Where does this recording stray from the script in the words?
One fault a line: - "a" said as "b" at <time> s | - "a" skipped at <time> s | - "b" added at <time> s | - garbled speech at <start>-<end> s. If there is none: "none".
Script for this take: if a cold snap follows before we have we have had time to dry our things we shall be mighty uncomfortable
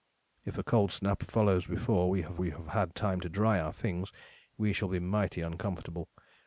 none